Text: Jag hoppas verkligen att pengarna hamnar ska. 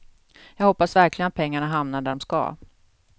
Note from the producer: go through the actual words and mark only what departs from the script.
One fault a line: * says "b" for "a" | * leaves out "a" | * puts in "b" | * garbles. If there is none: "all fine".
* puts in "där de"